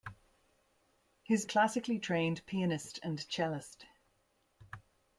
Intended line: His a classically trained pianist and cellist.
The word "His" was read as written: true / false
true